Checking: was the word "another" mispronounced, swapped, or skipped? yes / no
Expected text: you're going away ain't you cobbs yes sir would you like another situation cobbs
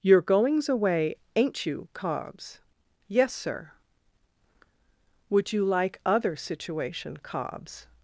yes